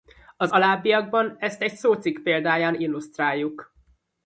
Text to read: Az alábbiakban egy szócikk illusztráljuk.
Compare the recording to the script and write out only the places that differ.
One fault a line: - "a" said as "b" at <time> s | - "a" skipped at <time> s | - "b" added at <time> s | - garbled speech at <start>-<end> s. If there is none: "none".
- "ezt" added at 1.4 s
- "példáján" added at 2.2 s